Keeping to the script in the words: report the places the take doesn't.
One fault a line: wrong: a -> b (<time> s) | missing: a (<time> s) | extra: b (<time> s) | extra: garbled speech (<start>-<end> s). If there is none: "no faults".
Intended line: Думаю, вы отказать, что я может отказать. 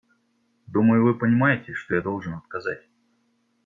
wrong: отказать -> понимаете (1.2 s)
wrong: может -> должен (2.0 s)